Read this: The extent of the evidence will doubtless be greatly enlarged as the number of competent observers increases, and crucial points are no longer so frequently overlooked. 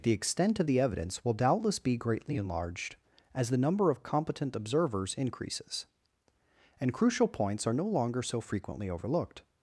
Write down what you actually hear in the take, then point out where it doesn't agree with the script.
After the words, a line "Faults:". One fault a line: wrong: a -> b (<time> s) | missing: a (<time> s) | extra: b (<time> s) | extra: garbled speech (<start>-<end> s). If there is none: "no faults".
The extent of the evidence will doubtless be greatly enlarged as the number of competent observers increases, and crucial points are no longer so frequently overlooked.
Faults:
no faults